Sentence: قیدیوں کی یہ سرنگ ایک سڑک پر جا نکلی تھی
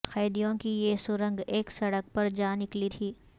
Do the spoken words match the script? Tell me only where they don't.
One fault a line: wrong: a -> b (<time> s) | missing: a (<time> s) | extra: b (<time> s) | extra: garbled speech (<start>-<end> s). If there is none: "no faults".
no faults